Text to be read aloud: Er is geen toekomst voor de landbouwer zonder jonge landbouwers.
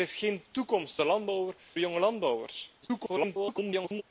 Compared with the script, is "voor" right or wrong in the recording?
wrong